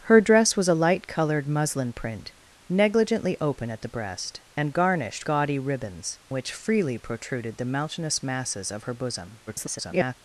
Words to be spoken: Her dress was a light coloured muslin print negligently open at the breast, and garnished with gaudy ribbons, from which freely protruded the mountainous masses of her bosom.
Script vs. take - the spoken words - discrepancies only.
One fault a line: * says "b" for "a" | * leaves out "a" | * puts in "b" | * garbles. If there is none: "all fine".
* leaves out "with"
* leaves out "from"
* garbles